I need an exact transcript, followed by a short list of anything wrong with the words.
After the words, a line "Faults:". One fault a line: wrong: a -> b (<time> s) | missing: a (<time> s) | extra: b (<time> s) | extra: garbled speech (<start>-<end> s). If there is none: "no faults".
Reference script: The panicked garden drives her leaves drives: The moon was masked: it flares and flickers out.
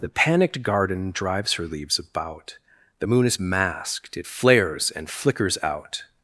The panicked garden drives her leaves about: The moon is masked: it flares and flickers out.
Faults:
wrong: drives -> about (2.0 s)
wrong: was -> is (3.3 s)